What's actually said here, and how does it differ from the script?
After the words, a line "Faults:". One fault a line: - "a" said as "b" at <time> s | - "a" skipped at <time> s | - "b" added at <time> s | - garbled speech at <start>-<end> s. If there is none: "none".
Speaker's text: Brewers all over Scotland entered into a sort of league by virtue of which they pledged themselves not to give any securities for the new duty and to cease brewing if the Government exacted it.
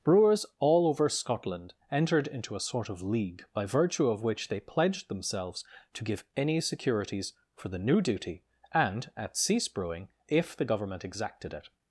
Brewers all over Scotland entered into a sort of league by virtue of which they pledged themselves to give any securities for the new duty and at cease brewing if the Government exacted it.
Faults:
- "not" skipped at 5.6 s
- "to" said as "at" at 9.2 s